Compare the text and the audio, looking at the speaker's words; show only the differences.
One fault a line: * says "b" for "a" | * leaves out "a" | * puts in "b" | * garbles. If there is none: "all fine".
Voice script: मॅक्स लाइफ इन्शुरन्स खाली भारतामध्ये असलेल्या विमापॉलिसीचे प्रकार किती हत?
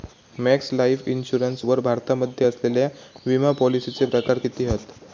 * says "वर" for "खाली"